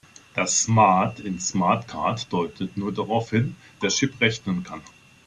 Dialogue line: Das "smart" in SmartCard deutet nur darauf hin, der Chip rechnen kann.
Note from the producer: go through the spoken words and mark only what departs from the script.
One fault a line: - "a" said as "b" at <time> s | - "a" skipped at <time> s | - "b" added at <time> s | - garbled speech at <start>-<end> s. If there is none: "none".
none